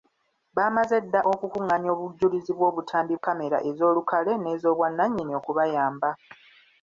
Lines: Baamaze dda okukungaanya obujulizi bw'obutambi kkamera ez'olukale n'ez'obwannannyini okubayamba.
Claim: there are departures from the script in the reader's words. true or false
false